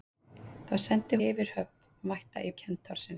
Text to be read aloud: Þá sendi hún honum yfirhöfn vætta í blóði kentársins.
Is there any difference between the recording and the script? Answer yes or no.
yes